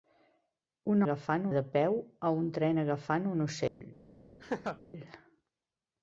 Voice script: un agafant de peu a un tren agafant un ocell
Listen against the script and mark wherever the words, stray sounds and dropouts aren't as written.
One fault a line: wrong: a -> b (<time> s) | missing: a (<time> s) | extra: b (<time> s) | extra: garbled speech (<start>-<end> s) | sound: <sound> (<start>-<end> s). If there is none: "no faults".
sound: dropout (3.7-3.8 s)
sound: laugh (4.4-4.8 s)